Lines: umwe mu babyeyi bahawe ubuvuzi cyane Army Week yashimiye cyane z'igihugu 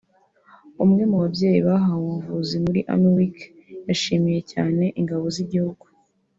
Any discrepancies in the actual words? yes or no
yes